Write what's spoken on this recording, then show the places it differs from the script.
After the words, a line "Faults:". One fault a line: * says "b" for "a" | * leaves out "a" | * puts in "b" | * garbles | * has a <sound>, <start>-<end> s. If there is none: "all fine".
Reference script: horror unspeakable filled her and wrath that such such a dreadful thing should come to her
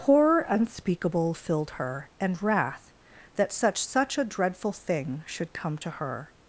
horror unspeakable filled her and wrath that such such a dreadful thing should come to her
Faults:
all fine